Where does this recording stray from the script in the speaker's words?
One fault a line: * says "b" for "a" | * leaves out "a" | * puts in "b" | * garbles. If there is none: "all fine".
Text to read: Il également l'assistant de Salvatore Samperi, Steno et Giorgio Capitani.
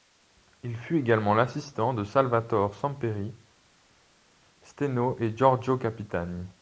* puts in "fut"